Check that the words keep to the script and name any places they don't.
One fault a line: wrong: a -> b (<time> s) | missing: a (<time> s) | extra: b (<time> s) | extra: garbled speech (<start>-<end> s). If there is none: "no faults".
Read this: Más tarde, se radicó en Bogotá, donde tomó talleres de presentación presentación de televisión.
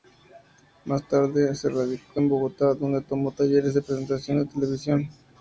missing: presentación (4.4 s)